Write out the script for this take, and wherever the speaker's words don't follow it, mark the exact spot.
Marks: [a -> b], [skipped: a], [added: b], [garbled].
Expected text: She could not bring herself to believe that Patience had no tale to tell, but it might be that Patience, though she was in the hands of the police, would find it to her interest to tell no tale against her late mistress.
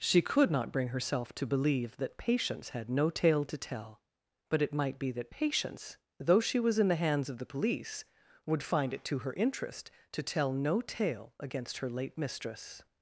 She could not bring herself to believe that Patience had no tale to tell, but it might be that Patience, though she was in the hands of the police, would find it to her interest to tell no tale against her late mistress.